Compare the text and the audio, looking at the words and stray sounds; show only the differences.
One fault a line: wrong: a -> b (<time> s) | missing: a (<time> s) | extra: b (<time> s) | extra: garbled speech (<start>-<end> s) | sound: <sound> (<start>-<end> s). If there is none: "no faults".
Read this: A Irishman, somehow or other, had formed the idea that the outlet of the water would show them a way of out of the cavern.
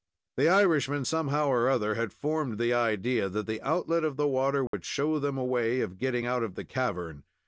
wrong: A -> The (0.3 s)
sound: dropout (4.7-4.7 s)
extra: getting (6.0 s)